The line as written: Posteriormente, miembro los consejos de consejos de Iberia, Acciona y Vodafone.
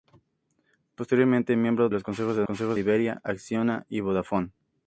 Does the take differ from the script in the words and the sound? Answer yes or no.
no